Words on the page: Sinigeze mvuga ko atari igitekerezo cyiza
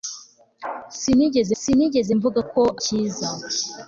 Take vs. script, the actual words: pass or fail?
fail